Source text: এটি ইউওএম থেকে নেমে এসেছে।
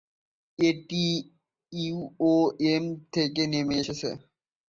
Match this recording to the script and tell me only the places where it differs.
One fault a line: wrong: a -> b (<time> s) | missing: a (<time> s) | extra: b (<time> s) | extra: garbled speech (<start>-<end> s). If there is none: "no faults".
no faults